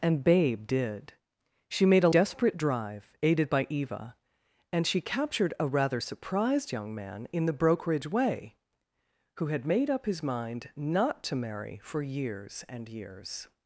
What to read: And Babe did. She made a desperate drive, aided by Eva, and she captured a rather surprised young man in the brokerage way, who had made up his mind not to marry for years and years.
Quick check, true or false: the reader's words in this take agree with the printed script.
true